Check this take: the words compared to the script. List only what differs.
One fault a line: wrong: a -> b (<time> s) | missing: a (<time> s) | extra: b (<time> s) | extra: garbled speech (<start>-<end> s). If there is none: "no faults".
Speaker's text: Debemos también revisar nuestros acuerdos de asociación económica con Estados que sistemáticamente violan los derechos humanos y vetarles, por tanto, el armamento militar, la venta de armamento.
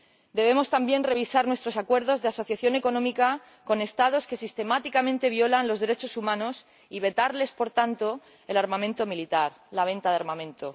no faults